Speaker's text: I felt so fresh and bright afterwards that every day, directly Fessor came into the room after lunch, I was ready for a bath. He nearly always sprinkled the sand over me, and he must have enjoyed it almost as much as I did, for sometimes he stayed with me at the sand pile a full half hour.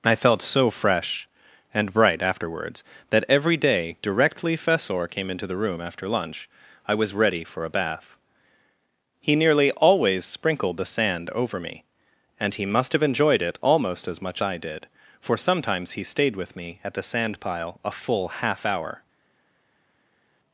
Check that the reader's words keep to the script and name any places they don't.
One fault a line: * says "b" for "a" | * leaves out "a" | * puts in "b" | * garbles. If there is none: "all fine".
* leaves out "as"